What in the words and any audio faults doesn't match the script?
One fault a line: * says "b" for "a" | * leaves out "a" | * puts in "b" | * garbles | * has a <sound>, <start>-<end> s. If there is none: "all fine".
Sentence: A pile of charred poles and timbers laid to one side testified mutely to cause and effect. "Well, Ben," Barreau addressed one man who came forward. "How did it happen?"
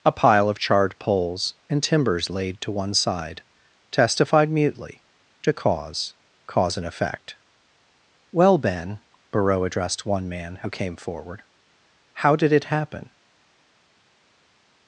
* puts in "cause"